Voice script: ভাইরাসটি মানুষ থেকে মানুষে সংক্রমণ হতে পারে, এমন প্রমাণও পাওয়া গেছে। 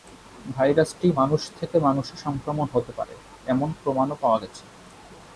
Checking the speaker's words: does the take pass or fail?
pass